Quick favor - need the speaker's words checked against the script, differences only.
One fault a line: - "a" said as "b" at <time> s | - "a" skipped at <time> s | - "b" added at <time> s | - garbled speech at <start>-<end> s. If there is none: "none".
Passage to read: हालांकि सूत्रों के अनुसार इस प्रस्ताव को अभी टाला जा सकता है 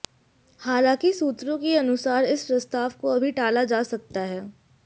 none